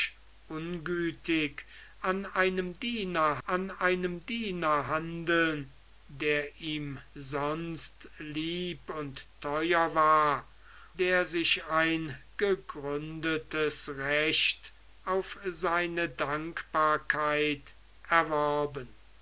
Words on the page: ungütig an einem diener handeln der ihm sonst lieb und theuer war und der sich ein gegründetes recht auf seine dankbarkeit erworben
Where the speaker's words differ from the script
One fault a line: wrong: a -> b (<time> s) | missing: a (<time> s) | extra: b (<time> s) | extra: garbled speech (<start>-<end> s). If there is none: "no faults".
extra: an einem diener (3.5 s)
missing: und (10.5 s)